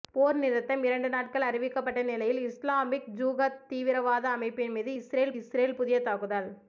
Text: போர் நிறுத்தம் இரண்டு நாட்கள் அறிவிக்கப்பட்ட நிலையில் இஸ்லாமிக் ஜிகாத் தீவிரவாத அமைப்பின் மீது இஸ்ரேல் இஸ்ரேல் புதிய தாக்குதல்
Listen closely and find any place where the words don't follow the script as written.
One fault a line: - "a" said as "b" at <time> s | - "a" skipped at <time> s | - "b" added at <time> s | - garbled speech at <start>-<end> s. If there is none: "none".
none